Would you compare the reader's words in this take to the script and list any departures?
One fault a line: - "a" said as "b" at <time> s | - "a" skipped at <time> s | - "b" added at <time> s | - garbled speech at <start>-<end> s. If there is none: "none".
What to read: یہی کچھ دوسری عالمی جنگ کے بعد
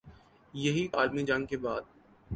- "کچھ دوسری" skipped at 0.9 s